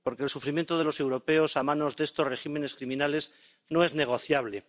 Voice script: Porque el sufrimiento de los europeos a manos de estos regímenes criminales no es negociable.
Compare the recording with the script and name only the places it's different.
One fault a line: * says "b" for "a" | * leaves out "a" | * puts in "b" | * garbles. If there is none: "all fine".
all fine